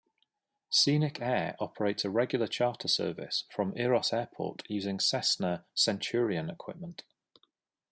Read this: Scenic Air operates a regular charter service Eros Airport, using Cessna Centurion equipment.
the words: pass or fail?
fail